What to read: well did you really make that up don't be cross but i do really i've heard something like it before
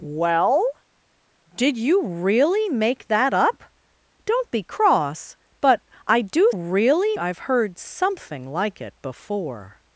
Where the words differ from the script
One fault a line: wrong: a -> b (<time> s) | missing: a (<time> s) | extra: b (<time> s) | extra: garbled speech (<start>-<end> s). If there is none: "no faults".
no faults